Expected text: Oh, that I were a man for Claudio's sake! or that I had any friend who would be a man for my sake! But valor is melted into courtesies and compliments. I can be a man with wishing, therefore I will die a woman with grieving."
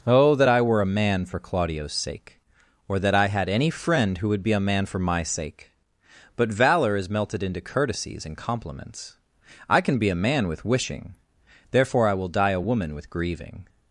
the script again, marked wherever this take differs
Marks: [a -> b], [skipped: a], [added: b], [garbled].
Oh, that I were a man for Claudio's sake! or that I had any friend who would be a man for my sake! But valor is melted into courtesies and compliments. I can be a man with wishing, therefore I will die a woman with grieving."